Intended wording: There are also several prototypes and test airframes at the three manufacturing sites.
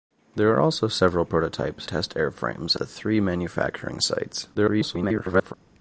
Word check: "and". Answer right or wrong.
wrong